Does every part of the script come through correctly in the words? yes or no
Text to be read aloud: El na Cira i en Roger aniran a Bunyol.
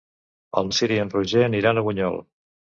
yes